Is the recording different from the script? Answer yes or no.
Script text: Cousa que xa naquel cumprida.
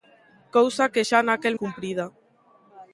no